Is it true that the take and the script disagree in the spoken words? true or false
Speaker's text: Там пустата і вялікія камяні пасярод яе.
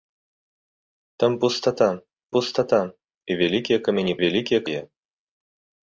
true